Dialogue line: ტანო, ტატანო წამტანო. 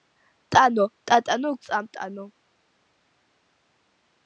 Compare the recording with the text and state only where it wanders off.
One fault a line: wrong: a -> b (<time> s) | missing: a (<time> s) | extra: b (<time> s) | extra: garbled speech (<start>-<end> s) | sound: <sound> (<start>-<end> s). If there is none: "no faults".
no faults